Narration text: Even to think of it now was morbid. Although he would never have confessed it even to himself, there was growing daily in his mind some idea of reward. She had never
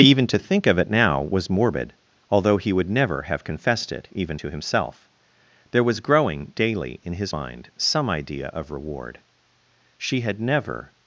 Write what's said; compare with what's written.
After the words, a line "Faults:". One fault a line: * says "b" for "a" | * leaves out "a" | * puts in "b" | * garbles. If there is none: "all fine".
Even to think of it now was morbid. Although he would never have confessed it even to himself, there was growing daily in his mind some idea of reward. She had never
Faults:
all fine